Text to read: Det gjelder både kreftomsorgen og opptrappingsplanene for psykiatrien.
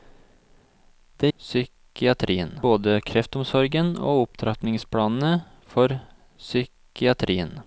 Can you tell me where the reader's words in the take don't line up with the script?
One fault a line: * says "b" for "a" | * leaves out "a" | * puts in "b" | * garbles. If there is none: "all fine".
* says "psykiatrien" for "gjelder"